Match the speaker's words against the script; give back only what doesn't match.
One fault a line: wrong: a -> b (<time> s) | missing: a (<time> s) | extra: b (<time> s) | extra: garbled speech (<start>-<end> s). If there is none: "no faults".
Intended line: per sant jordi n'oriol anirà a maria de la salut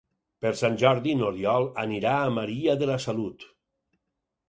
no faults